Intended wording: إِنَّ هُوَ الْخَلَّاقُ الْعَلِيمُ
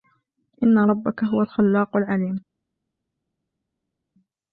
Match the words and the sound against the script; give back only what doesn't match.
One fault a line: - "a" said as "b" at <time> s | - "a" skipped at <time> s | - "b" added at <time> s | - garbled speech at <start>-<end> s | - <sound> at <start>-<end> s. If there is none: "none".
- "رَبَّكَ" added at 0.8 s